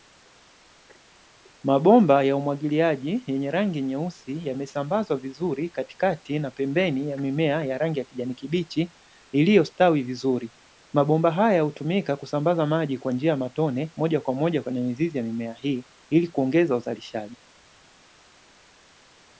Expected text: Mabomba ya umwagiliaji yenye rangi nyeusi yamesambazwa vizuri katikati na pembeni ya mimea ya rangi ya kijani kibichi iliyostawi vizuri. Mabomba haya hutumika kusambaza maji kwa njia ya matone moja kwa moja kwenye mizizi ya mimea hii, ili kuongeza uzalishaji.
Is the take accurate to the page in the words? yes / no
yes